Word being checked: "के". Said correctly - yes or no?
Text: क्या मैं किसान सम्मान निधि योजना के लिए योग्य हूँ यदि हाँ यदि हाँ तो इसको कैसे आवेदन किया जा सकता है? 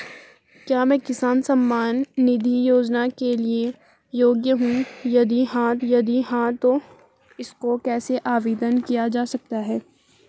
yes